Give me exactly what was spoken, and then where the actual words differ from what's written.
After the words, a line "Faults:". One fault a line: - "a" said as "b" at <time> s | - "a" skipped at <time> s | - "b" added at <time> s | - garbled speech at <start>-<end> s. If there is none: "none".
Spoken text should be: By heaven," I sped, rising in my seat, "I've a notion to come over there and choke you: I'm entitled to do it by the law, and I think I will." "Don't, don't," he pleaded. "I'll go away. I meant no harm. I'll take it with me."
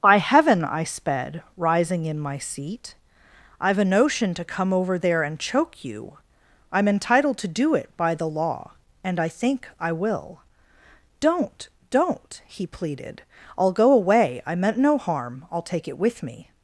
By heaven," I sped, rising in my seat, "I've a notion to come over there and choke you: I'm entitled to do it by the law, and I think I will." "Don't, don't," he pleaded. "I'll go away. I meant no harm. I'll take it with me."
Faults:
none